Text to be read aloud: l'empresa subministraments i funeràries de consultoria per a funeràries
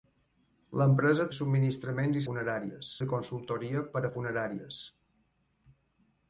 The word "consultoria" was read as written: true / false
true